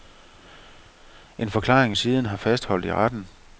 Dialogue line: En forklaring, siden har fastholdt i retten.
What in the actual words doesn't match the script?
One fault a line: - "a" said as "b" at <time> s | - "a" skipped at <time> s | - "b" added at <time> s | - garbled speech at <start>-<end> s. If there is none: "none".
none